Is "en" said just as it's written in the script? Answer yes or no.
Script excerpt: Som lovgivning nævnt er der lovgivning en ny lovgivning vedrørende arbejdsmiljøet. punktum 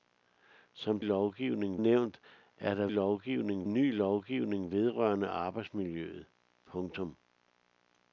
yes